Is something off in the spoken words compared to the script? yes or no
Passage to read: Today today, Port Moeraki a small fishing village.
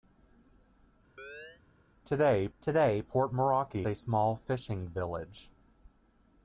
no